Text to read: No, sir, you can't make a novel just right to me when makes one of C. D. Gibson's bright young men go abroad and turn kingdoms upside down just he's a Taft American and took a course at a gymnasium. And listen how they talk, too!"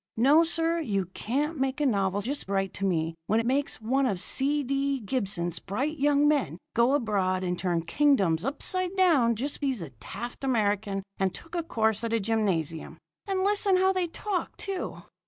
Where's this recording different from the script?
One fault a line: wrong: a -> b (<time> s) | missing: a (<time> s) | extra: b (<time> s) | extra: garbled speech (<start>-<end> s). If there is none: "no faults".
no faults